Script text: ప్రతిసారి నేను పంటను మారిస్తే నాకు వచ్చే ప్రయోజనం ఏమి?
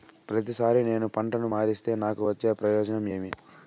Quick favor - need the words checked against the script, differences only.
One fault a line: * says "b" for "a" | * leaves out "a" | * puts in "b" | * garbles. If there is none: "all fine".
all fine